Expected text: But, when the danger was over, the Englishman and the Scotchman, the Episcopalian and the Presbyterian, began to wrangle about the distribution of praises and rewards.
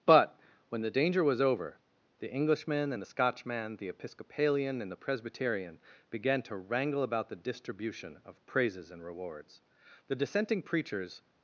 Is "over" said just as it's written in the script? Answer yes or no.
yes